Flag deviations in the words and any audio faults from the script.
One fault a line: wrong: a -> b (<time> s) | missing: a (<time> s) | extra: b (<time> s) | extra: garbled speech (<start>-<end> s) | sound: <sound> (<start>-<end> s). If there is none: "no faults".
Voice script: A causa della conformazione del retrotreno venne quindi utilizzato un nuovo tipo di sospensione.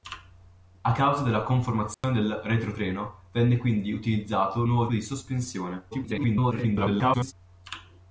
sound: dropout (1.9-2.0 s)
missing: tipo (4.9 s)
extra: garbled speech (5.9-7.3 s)